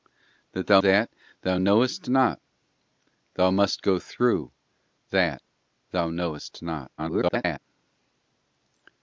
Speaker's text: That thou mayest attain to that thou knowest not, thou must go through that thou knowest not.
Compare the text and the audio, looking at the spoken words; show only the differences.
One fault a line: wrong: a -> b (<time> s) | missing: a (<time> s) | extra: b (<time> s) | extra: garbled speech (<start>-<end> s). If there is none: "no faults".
missing: mayest attain to (0.8 s)
extra: garbled speech (7.0-7.6 s)